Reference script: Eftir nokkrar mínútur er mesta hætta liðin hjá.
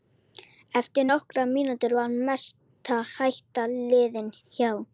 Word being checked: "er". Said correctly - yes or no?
no